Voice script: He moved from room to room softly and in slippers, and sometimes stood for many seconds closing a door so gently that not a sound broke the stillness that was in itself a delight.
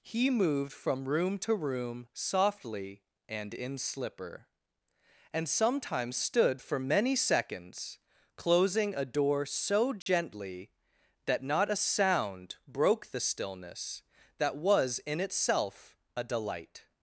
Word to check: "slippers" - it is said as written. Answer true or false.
false